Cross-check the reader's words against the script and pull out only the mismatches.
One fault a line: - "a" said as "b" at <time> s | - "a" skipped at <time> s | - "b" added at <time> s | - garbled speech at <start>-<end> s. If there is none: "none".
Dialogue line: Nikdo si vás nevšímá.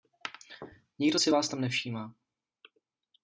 - "tam" added at 1.5 s